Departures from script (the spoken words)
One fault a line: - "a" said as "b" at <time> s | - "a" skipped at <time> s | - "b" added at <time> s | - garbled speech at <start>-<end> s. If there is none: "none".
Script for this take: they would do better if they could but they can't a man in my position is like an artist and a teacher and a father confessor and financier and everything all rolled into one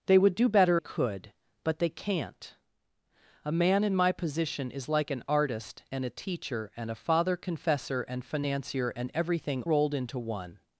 - "if they" skipped at 0.8 s
- "all" skipped at 9.6 s